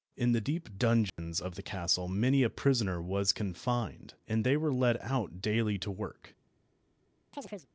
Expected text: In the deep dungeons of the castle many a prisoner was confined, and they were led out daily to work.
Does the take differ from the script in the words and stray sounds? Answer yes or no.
yes